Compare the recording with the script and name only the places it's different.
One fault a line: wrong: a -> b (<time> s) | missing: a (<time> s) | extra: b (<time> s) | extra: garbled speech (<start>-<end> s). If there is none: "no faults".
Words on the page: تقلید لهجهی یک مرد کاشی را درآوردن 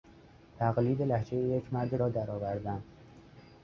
missing: کاشی (1.9 s)